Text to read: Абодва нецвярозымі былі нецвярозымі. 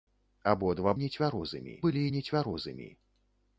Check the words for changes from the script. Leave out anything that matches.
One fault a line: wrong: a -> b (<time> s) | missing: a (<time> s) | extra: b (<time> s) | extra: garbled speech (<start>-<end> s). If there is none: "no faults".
no faults